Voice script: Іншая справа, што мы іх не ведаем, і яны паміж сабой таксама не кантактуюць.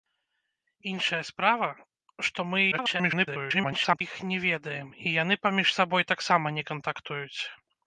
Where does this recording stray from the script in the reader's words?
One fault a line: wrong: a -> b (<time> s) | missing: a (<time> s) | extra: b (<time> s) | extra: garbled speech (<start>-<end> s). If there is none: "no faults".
extra: garbled speech (2.7-4.0 s)